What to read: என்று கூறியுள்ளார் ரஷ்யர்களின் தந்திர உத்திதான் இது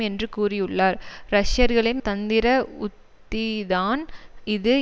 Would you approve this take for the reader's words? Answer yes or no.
yes